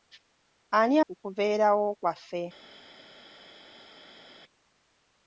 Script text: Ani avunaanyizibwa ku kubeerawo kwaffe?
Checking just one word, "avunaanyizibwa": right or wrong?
wrong